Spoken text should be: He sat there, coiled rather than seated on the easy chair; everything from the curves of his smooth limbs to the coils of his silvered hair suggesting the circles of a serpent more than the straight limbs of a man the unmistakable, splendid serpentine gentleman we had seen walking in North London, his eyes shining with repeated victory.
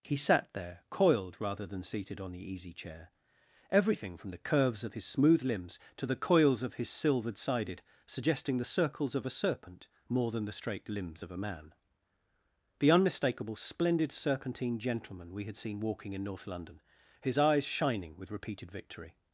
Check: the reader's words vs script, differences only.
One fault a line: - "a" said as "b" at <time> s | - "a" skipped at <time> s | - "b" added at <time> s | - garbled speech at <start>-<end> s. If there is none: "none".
- "hair" said as "sided" at 7.4 s